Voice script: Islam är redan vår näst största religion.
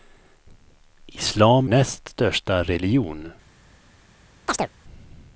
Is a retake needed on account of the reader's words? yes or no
yes